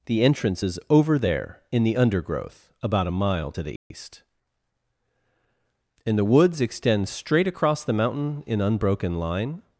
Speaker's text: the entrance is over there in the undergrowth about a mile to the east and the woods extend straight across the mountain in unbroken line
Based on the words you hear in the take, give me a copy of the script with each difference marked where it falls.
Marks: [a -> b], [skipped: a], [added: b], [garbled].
the entrance is over there in the undergrowth about a mile to the east and the woods extend straight across the mountain in unbroken line